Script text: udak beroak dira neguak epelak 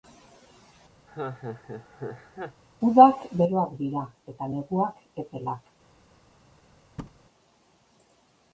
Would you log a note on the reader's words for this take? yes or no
yes